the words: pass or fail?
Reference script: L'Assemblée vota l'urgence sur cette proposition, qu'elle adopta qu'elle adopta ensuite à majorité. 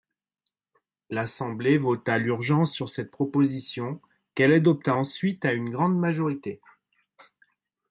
fail